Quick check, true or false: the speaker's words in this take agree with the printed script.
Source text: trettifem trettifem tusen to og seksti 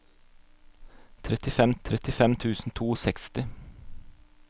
true